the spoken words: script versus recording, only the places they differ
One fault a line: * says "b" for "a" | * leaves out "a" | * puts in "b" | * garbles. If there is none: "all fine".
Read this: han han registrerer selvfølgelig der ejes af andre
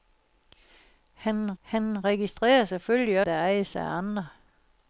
all fine